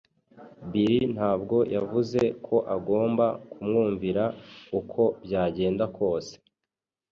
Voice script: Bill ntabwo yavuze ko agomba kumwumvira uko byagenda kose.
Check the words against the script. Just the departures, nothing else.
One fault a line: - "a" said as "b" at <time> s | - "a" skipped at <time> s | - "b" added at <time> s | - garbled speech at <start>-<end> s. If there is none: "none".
none